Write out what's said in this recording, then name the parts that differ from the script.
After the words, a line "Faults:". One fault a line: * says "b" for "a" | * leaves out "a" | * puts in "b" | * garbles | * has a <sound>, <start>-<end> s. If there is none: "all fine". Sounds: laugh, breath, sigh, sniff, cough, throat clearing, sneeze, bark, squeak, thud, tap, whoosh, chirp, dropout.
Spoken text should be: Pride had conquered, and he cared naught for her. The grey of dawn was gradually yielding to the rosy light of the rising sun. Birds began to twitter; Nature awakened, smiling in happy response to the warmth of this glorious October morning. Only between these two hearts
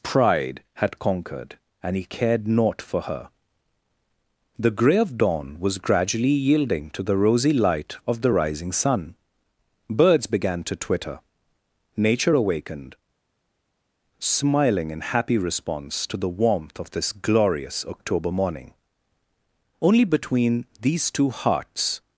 Pride had conquered, and he cared naught for her. The grey of dawn was gradually yielding to the rosy light of the rising sun. Birds began to twitter; Nature awakened, smiling in happy response to the warmth of this glorious October morning. Only between these two hearts
Faults:
all fine